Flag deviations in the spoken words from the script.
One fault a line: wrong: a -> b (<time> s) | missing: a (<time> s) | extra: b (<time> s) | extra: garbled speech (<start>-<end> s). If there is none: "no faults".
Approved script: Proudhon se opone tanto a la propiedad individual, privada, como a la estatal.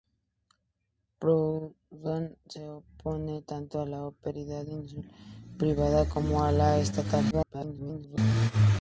extra: garbled speech (7.3-8.2 s)